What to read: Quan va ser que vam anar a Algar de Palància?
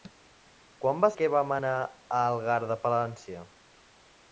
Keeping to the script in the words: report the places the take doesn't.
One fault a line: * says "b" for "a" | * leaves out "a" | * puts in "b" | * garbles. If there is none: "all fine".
* leaves out "ser"